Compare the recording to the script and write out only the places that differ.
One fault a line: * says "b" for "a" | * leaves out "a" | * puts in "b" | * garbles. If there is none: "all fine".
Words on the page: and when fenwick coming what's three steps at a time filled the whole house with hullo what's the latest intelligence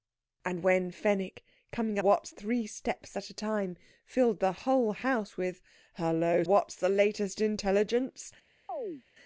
all fine